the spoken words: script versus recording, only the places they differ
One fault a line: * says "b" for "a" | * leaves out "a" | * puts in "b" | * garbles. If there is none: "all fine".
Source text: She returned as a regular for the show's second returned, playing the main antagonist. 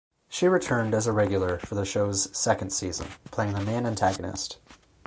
* says "season" for "returned"